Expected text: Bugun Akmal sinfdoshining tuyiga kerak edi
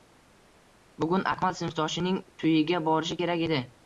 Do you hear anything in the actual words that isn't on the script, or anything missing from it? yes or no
yes